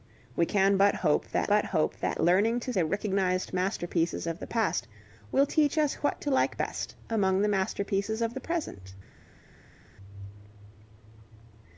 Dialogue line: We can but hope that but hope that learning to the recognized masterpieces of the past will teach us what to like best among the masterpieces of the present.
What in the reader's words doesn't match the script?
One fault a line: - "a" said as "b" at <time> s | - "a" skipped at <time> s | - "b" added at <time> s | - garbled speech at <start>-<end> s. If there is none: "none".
none